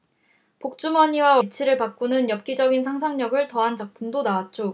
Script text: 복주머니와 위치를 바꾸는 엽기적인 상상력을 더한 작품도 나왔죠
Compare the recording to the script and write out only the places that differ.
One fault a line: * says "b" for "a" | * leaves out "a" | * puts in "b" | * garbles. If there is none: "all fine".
all fine